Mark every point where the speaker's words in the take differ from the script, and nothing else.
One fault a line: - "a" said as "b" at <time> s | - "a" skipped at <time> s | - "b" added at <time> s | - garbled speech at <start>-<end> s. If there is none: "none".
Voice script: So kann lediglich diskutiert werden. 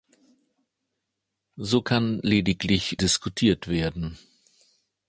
none